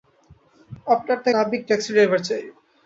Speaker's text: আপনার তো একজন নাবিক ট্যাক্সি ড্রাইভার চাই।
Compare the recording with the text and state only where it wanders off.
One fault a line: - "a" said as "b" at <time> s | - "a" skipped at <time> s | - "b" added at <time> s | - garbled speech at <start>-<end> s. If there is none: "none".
- "একজন" skipped at 1.3 s